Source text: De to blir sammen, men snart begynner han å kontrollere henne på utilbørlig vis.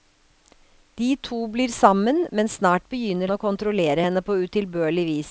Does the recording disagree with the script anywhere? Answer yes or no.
yes